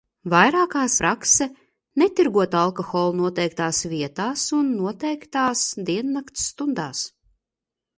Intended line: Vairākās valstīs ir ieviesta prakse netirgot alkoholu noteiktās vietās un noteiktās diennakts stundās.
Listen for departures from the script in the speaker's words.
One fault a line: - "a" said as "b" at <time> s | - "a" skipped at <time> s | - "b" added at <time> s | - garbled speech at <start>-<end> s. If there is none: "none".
- "valstīs ir ieviesta" skipped at 0.9 s